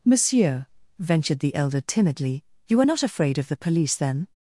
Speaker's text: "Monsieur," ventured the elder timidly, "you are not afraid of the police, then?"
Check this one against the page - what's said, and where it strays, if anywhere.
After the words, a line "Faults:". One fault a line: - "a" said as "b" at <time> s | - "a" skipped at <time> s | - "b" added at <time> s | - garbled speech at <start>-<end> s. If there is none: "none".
"Monsieur," ventured the elder timidly, "you are not afraid of the police, then?"
Faults:
none